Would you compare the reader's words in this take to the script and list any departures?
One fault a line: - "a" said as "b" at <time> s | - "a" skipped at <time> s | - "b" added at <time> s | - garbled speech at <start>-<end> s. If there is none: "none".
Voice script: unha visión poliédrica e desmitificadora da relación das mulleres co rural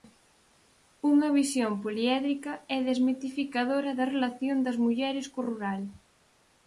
none